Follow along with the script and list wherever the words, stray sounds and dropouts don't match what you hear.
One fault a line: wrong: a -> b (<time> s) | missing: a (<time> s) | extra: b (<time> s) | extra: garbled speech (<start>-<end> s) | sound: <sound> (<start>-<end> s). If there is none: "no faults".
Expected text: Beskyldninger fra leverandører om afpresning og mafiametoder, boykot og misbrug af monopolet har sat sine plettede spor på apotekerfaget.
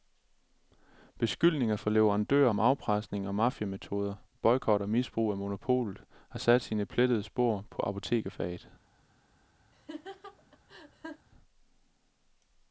sound: laugh (9.7-11.3 s)